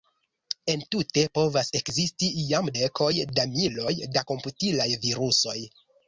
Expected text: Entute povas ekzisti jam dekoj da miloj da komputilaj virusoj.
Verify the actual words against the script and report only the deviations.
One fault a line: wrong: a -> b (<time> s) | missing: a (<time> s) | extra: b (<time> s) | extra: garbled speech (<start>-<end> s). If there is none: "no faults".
no faults